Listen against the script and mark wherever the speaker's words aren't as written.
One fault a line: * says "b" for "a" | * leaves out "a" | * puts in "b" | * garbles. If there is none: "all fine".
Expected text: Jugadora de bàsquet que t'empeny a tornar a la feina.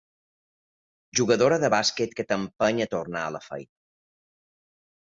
all fine